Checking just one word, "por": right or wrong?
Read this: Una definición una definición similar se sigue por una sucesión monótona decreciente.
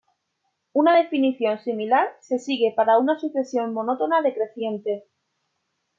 wrong